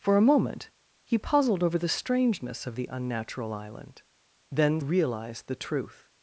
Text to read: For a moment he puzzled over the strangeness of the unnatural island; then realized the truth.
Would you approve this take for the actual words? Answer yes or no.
yes